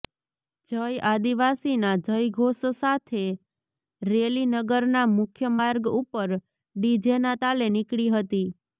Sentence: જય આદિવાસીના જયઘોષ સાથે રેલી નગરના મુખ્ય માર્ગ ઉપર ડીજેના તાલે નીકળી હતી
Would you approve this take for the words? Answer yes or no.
yes